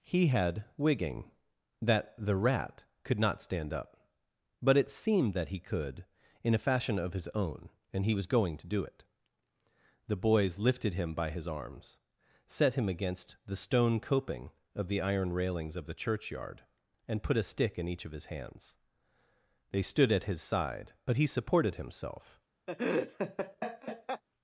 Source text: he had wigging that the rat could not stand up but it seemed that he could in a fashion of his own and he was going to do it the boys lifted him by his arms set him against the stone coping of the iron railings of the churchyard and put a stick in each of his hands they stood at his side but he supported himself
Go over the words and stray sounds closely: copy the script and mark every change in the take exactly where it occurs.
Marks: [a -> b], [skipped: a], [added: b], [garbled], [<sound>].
he had wigging that the rat could not stand up but it seemed that he could in a fashion of his own and he was going to do it the boys lifted him by his arms set him against the stone coping of the iron railings of the churchyard and put a stick in each of his hands they stood at his side but he supported himself [laugh]